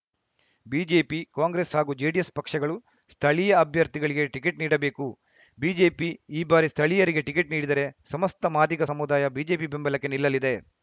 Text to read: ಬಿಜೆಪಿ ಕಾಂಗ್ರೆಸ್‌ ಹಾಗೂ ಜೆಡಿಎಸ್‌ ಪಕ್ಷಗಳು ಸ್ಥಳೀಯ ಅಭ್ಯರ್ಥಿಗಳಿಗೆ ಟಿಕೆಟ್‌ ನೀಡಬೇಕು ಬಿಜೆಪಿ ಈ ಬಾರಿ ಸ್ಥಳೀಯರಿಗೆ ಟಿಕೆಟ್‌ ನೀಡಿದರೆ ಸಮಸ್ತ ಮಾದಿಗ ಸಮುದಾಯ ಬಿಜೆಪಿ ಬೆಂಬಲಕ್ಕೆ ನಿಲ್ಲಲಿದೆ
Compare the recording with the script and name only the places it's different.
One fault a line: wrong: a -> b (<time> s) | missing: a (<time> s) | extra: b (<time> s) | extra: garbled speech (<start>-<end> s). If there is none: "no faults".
no faults